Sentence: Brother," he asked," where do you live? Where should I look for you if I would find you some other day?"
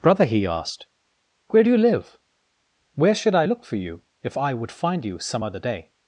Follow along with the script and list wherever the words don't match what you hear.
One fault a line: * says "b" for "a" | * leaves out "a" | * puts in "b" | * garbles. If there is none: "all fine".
all fine